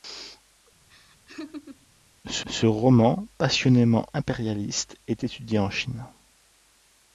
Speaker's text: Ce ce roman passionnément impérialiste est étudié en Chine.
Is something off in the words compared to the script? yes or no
no